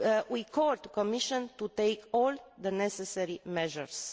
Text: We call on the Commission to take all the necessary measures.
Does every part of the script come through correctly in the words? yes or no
yes